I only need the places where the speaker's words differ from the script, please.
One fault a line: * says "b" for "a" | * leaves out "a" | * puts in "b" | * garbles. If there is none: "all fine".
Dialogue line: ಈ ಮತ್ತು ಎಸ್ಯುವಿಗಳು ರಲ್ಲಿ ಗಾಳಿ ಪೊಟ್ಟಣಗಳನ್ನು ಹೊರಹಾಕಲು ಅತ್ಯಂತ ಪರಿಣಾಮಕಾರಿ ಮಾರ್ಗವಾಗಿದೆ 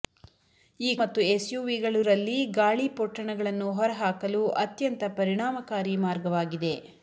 all fine